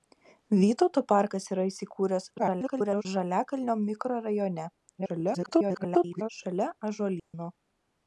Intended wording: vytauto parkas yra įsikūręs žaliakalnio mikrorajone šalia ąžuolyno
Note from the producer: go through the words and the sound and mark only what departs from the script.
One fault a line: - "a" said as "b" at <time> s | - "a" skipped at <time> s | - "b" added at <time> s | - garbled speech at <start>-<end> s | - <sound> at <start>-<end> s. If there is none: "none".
- garbled speech at 2.4-3.1 s
- garbled speech at 5.0-6.3 s
- dropout at 7.2-7.3 s